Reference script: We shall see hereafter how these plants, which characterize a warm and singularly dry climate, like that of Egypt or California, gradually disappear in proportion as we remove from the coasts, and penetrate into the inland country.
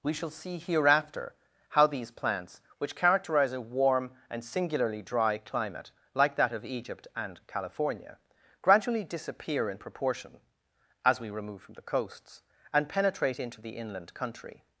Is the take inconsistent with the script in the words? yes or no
yes